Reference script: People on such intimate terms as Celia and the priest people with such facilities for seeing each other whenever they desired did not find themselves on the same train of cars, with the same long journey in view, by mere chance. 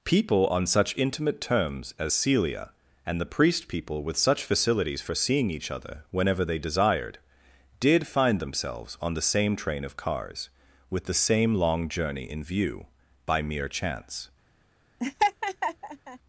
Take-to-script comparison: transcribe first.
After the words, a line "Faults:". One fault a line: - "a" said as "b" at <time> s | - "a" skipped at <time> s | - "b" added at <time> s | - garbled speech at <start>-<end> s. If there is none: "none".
People on such intimate terms as Celia and the priest people with such facilities for seeing each other whenever they desired did find themselves on the same train of cars, with the same long journey in view, by mere chance.
Faults:
- "not" skipped at 8.1 s